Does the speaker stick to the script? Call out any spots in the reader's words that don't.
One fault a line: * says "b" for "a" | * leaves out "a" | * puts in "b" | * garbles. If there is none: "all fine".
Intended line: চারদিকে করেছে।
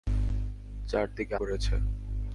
all fine